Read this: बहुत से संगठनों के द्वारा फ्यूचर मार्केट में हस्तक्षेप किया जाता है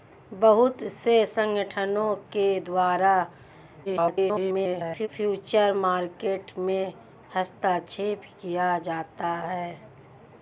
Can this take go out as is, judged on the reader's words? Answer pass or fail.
fail